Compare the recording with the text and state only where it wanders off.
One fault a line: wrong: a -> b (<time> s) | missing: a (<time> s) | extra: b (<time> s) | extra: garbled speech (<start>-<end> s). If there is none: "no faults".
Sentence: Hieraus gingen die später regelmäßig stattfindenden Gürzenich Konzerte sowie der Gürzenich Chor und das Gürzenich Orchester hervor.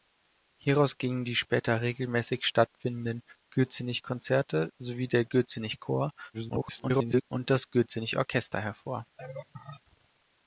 extra: garbled speech (6.3-7.2 s)